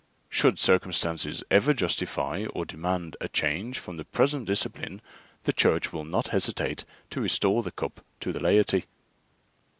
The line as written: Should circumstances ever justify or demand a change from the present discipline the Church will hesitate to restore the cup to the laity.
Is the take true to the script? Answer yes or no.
no